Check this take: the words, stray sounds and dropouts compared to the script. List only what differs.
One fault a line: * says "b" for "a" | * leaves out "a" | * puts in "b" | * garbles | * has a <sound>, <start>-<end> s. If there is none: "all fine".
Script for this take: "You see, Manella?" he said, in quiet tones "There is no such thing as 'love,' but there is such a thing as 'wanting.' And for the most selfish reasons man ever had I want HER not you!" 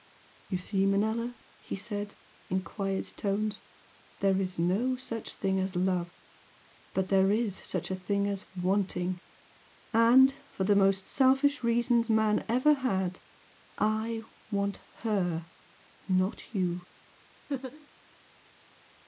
* has a laugh, 17.5-17.9 s